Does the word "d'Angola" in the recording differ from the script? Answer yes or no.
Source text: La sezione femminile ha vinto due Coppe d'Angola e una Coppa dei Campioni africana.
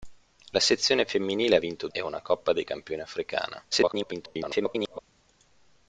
yes